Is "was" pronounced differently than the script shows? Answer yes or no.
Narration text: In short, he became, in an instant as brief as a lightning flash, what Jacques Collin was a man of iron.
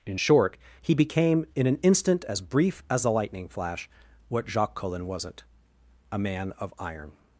yes